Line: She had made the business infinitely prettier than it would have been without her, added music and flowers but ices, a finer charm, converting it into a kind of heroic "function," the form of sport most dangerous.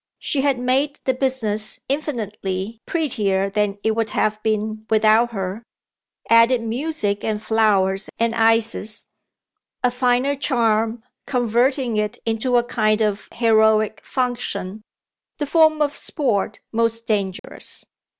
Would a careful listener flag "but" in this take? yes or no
yes